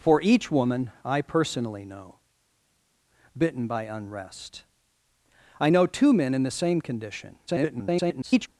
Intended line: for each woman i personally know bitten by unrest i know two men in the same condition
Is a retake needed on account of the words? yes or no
yes